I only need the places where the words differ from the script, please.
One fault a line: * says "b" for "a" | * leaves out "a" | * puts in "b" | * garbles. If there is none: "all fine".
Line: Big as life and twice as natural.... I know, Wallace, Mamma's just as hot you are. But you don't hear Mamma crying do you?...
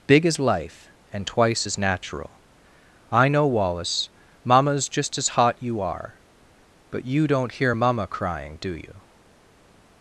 all fine